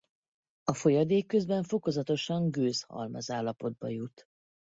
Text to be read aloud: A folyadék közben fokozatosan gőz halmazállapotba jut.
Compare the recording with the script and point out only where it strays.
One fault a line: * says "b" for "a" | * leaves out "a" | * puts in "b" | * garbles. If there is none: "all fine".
all fine